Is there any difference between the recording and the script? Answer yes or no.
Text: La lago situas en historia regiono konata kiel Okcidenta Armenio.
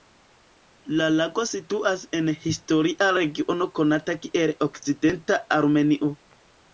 no